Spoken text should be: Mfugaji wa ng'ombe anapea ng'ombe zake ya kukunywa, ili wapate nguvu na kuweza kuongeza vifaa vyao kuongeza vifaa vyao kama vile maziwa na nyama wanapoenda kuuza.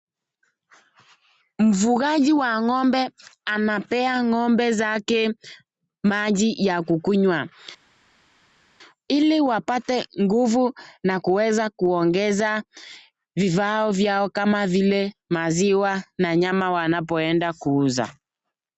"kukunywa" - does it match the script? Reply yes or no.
yes